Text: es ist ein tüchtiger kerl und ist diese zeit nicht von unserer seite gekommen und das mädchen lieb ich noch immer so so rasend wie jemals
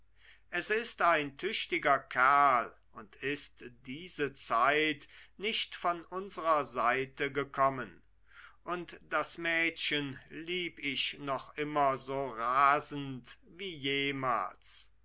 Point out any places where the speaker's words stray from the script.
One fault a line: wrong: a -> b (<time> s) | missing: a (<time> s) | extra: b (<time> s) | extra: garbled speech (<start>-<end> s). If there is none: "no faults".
missing: so (12.3 s)